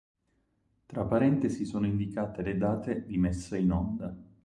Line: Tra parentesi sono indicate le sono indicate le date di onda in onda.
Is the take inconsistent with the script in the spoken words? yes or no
yes